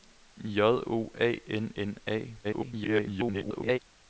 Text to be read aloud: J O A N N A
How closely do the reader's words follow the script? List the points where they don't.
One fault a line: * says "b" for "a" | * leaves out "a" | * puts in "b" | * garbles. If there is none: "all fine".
* garbles